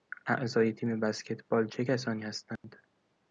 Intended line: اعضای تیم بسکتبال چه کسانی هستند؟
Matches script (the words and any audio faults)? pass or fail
fail